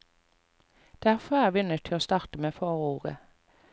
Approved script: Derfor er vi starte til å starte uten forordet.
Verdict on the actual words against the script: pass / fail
fail